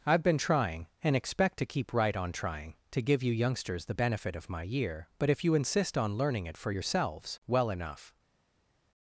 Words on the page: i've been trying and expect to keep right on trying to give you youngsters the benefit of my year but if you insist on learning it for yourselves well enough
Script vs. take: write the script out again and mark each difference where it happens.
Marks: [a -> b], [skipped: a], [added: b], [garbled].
i've been trying and expect to keep right on trying to give you youngsters the benefit of my year but if you insist on learning it for yourselves well enough